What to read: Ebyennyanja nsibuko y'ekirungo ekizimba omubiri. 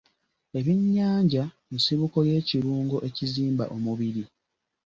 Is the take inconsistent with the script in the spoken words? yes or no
no